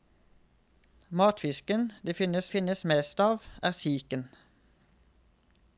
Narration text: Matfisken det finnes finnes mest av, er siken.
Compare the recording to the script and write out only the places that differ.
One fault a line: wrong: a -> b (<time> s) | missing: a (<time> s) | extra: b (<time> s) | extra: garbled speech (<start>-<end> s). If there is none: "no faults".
no faults